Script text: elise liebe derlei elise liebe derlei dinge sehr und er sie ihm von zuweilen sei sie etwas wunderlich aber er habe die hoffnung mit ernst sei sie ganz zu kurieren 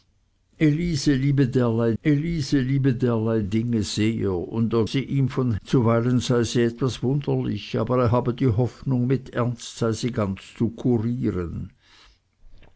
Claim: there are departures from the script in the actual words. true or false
false